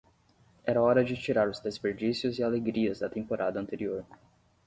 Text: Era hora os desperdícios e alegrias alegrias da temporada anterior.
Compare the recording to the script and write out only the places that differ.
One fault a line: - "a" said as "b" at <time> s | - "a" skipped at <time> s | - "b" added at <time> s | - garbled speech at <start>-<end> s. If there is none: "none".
- "de tirar" added at 1.0 s
- "alegrias" skipped at 3.0 s